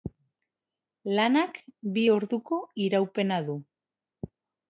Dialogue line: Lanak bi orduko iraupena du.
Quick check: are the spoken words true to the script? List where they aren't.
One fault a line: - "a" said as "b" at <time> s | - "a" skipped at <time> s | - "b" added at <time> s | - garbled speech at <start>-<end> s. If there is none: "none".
none